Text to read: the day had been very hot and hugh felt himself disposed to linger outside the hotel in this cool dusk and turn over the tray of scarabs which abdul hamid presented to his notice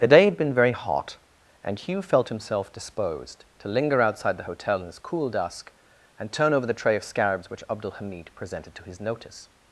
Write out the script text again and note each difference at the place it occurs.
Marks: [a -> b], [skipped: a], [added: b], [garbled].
the day had been very hot and hugh felt himself disposed to linger outside the hotel in this cool dusk and turn over the tray of scarabs which abdul hamid presented to his notice